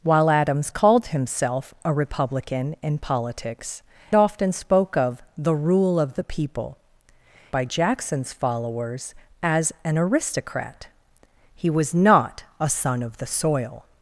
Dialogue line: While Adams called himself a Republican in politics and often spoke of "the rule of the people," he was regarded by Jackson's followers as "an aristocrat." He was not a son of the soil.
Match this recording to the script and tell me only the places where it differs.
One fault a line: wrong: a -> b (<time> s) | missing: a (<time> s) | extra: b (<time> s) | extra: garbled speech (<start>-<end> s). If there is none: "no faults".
missing: and (3.8 s)
missing: he was regarded (6.8 s)